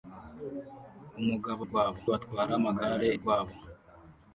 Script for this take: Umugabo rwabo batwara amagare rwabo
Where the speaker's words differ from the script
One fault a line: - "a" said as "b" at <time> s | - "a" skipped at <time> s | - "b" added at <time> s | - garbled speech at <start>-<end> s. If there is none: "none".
none